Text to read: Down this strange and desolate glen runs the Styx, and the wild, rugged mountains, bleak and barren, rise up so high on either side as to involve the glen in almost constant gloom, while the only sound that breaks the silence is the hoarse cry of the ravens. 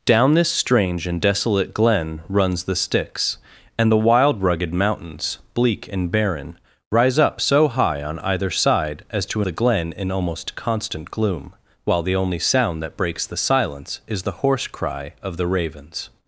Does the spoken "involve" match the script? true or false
false